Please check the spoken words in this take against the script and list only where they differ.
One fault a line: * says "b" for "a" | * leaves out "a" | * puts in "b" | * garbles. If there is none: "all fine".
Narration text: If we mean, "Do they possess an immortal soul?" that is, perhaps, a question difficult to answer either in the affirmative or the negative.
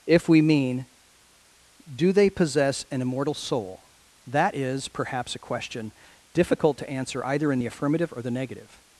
all fine